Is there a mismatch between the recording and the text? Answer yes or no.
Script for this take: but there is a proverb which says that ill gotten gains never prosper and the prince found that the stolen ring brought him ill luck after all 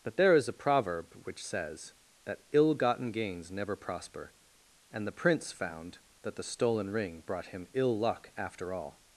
no